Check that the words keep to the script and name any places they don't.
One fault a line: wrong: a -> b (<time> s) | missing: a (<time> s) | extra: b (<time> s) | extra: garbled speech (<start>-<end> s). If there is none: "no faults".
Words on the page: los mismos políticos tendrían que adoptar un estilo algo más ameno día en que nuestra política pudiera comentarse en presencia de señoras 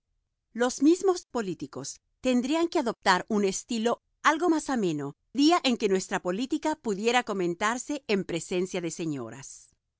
no faults